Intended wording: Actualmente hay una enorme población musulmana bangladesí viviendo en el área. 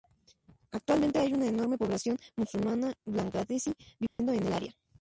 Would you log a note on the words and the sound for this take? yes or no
yes